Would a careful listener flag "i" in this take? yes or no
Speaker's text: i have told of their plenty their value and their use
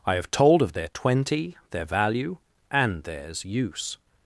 no